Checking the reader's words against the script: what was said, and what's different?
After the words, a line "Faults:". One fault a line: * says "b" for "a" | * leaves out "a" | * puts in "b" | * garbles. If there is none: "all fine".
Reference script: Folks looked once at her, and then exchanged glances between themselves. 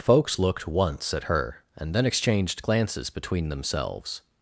Folks looked once at her, and then exchanged glances between themselves.
Faults:
all fine